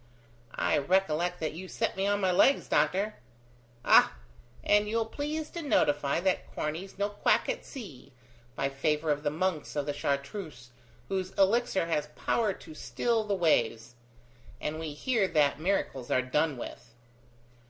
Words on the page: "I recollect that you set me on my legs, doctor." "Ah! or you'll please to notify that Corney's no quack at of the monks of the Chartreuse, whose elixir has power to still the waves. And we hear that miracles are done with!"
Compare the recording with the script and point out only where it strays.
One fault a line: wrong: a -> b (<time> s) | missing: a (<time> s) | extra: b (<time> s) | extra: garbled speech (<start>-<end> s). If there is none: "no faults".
wrong: or -> and (4.6 s)
extra: sea by favour (7.6 s)